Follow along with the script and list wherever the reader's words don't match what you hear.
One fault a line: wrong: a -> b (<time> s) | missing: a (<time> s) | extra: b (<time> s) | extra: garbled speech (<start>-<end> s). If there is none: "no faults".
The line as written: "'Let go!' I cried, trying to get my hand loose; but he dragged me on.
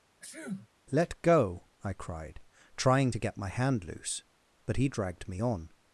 no faults